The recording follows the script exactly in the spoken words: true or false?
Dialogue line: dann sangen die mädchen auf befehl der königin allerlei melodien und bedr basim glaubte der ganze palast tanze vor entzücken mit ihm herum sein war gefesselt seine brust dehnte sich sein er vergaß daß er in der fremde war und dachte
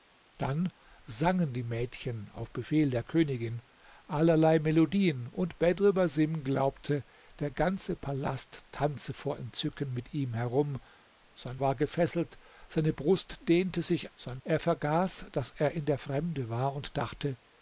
true